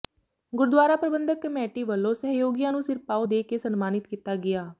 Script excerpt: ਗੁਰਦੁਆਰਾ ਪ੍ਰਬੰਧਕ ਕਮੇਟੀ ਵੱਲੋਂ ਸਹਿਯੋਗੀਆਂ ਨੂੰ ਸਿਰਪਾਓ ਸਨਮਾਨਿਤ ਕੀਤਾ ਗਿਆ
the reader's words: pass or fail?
fail